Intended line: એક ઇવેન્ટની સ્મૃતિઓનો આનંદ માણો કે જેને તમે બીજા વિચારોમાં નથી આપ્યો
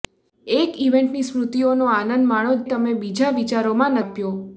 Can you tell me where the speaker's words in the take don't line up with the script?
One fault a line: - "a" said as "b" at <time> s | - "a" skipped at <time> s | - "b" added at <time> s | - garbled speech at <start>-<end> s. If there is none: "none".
- "કે જેને" skipped at 2.5 s
- "નથી" skipped at 4.0 s